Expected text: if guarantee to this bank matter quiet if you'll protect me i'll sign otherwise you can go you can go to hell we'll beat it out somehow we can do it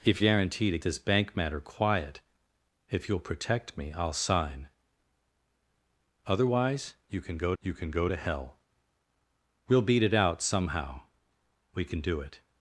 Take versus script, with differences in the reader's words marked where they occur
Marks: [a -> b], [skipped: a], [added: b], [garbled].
if guarantee to this bank matter quiet if you'll protect me i'll sign otherwise you can go you can go to hell we'll beat it out somehow we can do it